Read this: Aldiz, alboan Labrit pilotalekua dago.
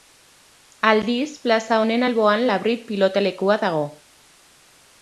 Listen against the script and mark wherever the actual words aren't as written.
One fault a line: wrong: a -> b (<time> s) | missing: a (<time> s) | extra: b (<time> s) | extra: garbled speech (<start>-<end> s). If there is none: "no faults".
extra: plaza honen (1.4 s)